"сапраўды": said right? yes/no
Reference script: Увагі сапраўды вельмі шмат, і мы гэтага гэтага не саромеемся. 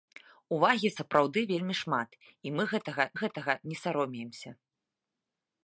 yes